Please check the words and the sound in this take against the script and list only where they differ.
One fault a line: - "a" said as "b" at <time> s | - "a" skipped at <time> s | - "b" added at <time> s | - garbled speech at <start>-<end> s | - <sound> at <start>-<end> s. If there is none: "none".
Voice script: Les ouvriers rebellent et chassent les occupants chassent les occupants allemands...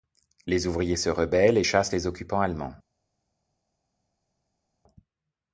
- "se" added at 0.9 s
- "chassent les occupants" skipped at 2.4 s